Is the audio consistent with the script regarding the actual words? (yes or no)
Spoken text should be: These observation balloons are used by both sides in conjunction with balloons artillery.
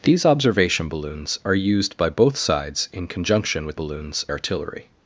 yes